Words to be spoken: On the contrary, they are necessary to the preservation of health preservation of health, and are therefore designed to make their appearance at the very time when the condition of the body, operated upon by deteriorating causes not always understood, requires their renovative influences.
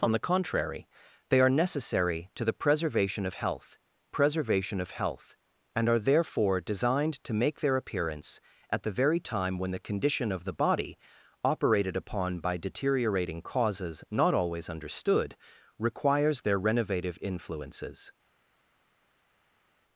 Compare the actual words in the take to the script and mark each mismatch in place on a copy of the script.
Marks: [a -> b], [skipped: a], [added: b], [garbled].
On the contrary, they are necessary to the preservation of health preservation of health, and are therefore designed to make their appearance at the very time when the condition of the body, operated upon by deteriorating causes not always understood, requires their renovative influences.